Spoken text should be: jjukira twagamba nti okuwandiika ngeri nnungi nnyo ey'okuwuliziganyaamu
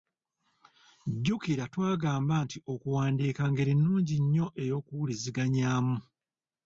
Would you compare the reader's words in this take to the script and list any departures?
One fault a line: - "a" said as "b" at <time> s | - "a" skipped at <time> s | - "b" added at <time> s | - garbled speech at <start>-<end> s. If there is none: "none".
none